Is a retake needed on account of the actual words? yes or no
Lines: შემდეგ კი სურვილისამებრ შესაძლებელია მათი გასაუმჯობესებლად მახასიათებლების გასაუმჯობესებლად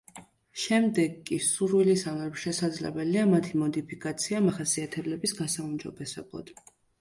yes